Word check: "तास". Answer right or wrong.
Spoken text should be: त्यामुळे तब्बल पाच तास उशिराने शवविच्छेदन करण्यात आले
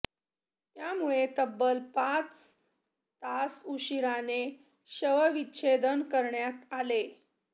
right